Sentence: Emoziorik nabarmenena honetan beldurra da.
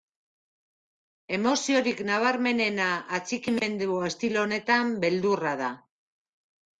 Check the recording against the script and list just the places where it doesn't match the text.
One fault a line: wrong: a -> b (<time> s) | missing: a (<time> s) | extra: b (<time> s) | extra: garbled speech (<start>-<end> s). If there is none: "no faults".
extra: atxikimendu estilo (3.2 s)